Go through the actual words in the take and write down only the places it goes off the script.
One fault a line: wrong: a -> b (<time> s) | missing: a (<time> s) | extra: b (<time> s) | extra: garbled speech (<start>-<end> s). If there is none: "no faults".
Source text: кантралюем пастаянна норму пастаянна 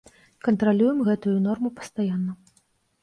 wrong: пастаянна -> гэтую (1.1 s)